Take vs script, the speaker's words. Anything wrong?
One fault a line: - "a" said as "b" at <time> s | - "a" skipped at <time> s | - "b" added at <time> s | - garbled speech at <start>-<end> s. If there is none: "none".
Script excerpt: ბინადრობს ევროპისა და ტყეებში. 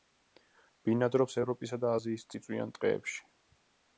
- "აზიის წიწვიან" added at 2.0 s